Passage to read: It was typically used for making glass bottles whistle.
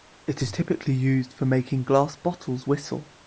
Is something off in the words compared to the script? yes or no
yes